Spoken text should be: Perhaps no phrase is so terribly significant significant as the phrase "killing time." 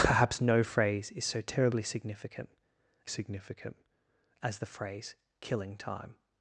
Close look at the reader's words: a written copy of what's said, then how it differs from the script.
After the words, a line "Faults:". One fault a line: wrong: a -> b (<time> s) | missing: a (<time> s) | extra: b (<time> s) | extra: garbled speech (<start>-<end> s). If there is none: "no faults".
Perhaps no phrase is so terribly significant significant as the phrase "killing time."
Faults:
no faults